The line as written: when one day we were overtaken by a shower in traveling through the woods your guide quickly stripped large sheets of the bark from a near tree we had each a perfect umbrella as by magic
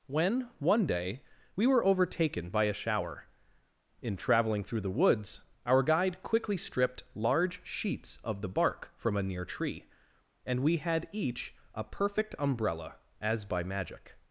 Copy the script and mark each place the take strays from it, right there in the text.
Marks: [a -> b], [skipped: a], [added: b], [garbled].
when one day we were overtaken by a shower in traveling through the woods [your -> our] guide quickly stripped large sheets of the bark from a near tree [added: and] we had each a perfect umbrella as by magic